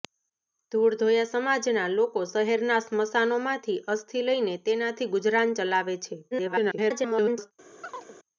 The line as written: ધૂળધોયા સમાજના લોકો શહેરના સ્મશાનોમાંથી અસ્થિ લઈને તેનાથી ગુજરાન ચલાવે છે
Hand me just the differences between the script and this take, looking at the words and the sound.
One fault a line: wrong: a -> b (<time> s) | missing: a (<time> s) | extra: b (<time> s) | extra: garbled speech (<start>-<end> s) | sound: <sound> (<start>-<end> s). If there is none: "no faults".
extra: garbled speech (6.3-7.5 s)
sound: chirp (7.8-8.2 s)